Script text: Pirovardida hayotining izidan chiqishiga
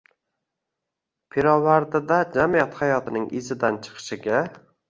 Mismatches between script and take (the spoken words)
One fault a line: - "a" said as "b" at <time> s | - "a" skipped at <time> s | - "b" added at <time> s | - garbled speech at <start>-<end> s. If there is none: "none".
- "jamiyat" added at 2.4 s